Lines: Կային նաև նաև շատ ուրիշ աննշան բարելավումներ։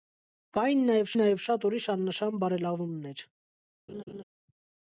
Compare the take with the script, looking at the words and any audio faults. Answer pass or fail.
fail